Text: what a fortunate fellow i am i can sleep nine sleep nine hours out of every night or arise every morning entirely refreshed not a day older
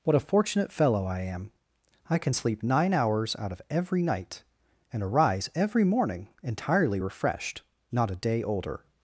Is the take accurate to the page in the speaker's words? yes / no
no